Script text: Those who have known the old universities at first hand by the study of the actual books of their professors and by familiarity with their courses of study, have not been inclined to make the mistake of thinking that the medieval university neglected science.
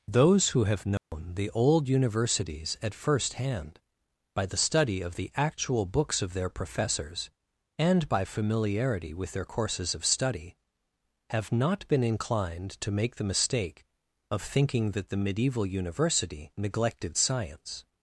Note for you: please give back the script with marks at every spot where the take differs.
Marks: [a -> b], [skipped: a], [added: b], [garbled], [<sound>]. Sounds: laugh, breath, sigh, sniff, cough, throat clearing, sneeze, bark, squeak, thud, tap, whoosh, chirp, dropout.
Those who have known [dropout] the old universities at first hand by the study of the actual books of their professors and by familiarity with their courses of study, have not been inclined to make the mistake of thinking that the medieval university neglected science.